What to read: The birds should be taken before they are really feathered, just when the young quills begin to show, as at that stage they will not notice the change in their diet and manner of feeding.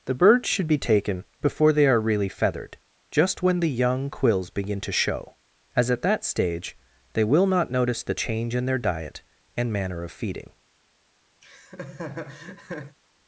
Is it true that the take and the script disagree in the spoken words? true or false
false